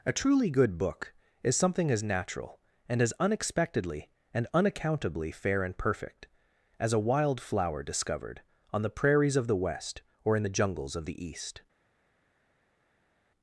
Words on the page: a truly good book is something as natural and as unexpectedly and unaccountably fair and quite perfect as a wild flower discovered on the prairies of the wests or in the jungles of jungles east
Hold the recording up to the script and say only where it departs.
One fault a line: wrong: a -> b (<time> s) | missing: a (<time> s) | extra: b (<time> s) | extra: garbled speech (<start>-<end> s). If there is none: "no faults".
missing: quite (5.8 s)
wrong: wests -> west (9.6 s)
wrong: jungles -> the (11.0 s)